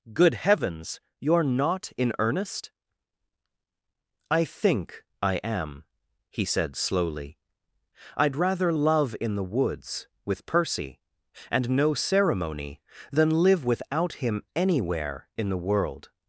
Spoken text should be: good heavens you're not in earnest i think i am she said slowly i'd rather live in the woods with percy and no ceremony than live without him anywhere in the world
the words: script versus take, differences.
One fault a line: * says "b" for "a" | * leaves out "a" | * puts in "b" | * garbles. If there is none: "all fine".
* says "he" for "she"
* says "love" for "live"